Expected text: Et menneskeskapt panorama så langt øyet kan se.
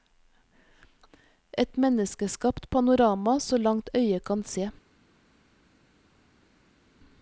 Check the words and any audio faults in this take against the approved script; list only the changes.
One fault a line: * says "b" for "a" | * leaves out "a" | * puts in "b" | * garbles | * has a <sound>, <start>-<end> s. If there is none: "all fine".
all fine